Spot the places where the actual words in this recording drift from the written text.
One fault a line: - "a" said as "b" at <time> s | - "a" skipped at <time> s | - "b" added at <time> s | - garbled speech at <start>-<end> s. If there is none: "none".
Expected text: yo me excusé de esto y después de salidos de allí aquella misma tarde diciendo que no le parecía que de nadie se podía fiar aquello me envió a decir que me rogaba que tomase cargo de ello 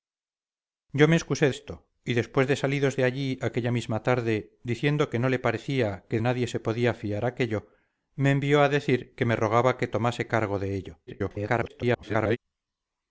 - "de" skipped at 1.5 s
- "de" skipped at 6.2 s
- garbled speech at 11.1-12.4 s